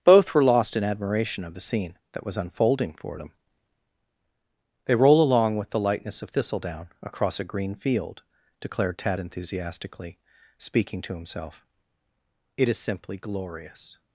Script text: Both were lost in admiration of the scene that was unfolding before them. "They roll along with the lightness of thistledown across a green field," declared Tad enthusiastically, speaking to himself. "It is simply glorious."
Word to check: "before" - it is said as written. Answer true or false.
false